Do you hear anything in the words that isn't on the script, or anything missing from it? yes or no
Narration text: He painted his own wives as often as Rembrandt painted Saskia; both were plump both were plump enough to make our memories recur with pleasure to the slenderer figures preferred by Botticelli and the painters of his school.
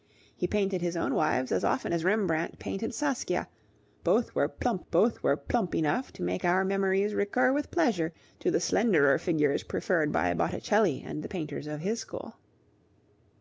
no